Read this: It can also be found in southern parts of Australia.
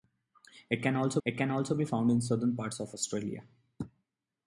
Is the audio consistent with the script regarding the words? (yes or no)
no